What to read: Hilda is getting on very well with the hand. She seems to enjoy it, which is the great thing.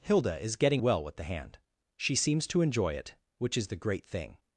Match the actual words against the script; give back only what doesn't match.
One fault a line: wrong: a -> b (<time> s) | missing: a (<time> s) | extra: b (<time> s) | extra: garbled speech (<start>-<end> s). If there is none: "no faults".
missing: on very (0.8 s)